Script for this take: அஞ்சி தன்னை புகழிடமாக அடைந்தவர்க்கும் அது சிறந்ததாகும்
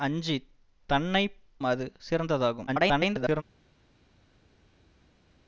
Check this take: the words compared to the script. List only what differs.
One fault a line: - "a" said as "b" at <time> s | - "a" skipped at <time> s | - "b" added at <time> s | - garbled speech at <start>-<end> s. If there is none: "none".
- "புகழிடமாக அடைந்தவர்க்கும்" skipped at 1.2 s
- garbled speech at 2.7-3.4 s